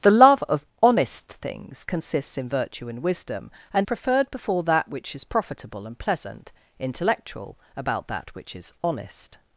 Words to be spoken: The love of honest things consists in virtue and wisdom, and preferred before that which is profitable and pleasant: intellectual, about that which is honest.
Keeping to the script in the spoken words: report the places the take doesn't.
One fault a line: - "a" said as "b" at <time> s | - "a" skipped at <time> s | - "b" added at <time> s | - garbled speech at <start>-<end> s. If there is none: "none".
none